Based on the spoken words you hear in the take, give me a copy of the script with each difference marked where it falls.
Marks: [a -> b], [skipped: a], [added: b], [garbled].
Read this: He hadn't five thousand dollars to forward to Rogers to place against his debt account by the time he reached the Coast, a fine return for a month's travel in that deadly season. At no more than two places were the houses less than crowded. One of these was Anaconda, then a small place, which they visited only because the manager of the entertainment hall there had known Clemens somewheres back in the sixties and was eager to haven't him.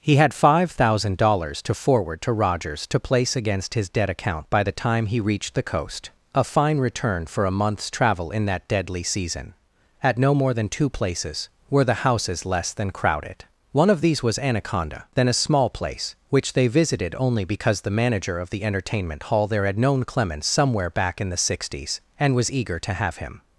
He [hadn't -> had] five thousand dollars to forward to Rogers to place against his debt account by the time he reached the Coast, a fine return for a month's travel in that deadly season. At no more than two places were the houses less than crowded. One of these was Anaconda, then a small place, which they visited only because the manager of the entertainment hall there had known Clemens [somewheres -> somewhere] back in the sixties and was eager to [haven't -> have] him.